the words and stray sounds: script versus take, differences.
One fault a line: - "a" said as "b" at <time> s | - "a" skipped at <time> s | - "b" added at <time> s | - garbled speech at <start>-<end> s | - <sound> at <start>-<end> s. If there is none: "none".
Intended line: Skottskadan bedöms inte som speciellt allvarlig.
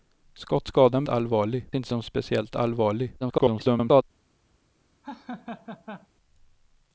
- "bedöms" said as "allvarlig" at 1.1 s
- garbled speech at 3.2-4.0 s
- laugh at 5.0-6.1 s